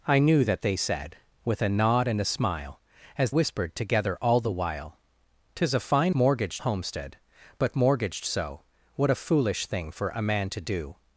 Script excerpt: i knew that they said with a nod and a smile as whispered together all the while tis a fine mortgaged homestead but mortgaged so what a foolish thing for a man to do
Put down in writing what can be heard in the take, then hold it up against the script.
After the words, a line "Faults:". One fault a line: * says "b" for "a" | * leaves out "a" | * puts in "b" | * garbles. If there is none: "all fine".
i knew that they said with a nod and a smile as whispered together all the while tis a fine mortgaged homestead but mortgaged so what a foolish thing for a man to do
Faults:
all fine